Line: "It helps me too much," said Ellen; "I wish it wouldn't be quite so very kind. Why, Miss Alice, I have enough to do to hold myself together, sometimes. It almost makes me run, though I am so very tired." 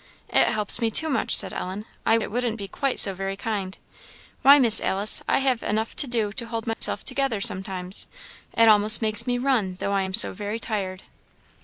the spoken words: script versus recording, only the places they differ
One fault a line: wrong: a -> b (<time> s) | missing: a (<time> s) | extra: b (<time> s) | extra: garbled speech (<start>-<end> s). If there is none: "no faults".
missing: wish (2.2 s)